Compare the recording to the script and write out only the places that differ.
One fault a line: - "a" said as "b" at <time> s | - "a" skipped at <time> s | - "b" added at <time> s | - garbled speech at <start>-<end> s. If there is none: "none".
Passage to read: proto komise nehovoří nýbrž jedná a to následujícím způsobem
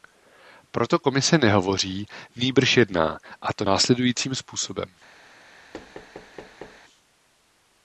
none